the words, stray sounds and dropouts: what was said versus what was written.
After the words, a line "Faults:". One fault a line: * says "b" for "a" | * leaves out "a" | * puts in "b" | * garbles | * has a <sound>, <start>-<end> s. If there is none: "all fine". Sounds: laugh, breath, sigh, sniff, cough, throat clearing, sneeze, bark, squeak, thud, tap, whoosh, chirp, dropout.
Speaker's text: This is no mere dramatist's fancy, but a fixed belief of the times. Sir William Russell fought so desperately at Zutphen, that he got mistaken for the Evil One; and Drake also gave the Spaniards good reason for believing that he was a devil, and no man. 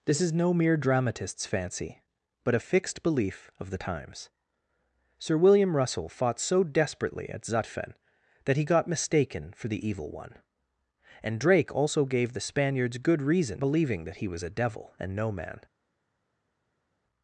This is no mere dramatist's fancy, but a fixed belief of the times. Sir William Russell fought so desperately at Zutphen, that he got mistaken for the Evil One; and Drake also gave the Spaniards good reason believing that he was a devil, and no man.
Faults:
* leaves out "for"